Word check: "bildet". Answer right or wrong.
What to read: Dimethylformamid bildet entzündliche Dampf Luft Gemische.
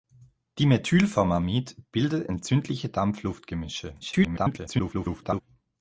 right